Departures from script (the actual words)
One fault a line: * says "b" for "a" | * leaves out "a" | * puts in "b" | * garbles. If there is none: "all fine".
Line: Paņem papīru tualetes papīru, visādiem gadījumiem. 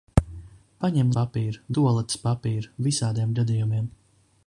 all fine